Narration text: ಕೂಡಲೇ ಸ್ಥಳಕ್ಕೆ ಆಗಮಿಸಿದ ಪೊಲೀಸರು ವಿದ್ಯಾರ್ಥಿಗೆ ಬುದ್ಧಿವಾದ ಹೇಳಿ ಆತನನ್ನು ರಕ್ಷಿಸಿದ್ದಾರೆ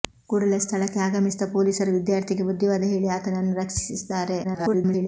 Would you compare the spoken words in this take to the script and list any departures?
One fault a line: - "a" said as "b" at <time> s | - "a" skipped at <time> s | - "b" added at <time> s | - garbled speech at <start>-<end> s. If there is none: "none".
- garbled speech at 4.4-5.1 s